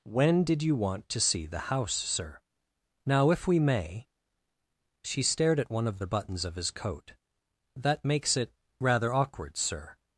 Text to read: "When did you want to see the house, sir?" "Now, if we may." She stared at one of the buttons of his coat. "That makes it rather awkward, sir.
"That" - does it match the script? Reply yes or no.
yes